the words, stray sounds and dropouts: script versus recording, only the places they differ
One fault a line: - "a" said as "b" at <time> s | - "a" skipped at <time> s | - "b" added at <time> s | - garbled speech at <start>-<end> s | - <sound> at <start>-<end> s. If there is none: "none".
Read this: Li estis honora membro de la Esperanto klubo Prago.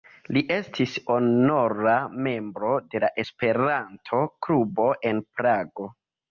- "en" added at 5.1 s